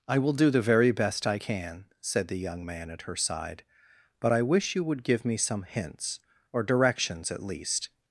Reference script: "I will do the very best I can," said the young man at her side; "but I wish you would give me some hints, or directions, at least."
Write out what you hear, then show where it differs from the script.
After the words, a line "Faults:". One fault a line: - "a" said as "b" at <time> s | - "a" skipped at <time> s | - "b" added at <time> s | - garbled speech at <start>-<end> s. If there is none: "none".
"I will do the very best I can," said the young man at her side; "but I wish you would give me some hints, or directions, at least."
Faults:
none